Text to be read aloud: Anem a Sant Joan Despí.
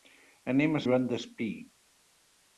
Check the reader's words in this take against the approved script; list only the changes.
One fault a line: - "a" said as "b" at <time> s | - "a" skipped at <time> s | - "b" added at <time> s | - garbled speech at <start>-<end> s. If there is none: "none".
- "Sant" skipped at 0.8 s